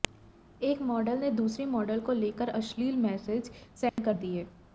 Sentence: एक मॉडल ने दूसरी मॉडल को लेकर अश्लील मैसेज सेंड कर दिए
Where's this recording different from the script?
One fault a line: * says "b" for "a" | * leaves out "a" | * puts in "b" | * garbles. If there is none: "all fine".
all fine